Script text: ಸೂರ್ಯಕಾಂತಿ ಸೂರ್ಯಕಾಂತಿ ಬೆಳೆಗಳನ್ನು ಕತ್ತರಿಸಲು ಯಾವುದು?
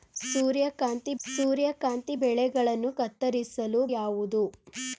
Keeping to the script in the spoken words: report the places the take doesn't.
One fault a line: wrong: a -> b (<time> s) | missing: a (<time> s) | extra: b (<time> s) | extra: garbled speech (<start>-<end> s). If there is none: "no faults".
no faults